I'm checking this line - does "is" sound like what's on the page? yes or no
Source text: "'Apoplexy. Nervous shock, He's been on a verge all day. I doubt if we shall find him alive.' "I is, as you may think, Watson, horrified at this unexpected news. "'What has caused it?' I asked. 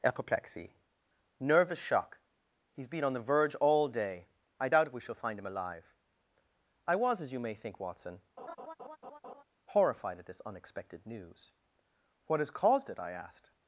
no